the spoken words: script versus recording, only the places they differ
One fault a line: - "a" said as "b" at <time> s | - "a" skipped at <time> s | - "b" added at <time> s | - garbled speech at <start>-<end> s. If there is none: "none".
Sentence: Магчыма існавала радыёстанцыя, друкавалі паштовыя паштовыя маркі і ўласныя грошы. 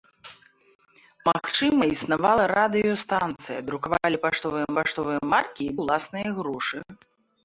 none